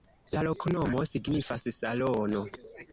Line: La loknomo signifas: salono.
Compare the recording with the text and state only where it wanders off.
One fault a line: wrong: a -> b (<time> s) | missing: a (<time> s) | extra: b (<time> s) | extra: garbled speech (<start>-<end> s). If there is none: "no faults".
no faults